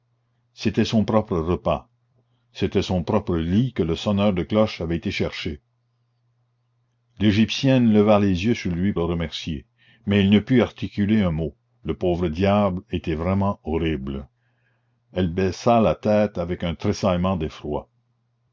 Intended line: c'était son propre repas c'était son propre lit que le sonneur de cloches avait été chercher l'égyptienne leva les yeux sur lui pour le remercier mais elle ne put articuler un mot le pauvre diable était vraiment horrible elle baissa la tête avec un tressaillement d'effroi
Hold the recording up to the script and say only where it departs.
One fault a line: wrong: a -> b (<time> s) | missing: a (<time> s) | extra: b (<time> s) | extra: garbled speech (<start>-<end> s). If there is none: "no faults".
missing: pour (8.9 s)